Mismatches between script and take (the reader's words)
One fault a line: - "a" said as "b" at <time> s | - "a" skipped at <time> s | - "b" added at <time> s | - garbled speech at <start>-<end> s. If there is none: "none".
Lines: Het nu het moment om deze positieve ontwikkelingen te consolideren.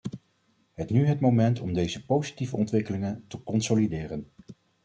none